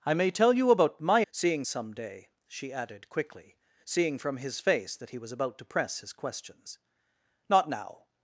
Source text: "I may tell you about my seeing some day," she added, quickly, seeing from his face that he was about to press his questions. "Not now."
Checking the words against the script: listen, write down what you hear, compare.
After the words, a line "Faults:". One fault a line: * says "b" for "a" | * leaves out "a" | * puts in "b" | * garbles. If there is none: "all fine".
"I may tell you about my seeing some day," she added, quickly, seeing from his face that he was about to press his questions. "Not now."
Faults:
all fine